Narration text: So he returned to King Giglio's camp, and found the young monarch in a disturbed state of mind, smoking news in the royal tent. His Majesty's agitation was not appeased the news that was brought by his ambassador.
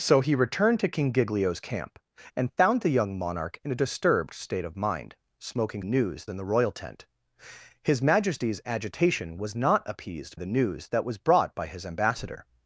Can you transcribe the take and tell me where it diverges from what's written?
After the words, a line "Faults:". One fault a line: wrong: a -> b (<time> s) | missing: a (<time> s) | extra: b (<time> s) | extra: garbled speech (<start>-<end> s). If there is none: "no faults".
So he returned to King Giglio's camp, and found the young monarch in a disturbed state of mind, smoking news in the royal tent. His Majesty's agitation was not appeased the news that was brought by his ambassador.
Faults:
no faults